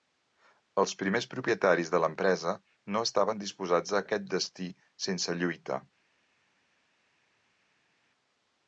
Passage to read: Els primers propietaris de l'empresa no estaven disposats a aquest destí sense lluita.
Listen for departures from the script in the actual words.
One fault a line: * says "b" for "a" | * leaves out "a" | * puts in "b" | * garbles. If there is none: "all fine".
all fine